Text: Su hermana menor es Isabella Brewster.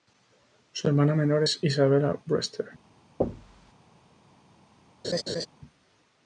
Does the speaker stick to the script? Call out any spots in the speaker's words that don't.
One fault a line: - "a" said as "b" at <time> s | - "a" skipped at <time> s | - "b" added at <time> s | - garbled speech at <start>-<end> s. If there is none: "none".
none